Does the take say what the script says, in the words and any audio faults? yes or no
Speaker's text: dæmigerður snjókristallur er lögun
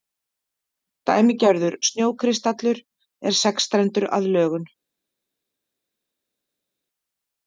no